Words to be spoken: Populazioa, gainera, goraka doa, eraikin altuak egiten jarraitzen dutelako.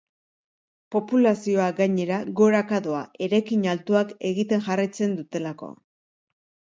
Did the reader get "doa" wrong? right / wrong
right